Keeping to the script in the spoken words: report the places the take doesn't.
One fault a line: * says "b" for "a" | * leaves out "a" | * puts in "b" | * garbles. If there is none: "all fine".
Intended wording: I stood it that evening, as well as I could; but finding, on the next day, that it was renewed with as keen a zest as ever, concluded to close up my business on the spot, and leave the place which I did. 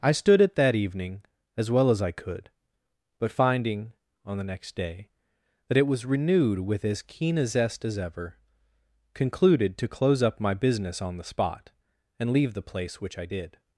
all fine